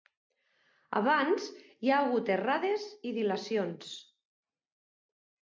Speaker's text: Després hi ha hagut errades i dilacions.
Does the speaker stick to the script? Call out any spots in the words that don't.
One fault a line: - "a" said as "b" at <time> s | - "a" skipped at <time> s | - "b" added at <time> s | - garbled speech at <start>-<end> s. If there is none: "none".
- "Després" said as "Abans" at 1.0 s